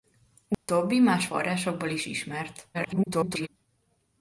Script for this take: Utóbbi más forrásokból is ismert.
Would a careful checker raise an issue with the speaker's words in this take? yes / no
yes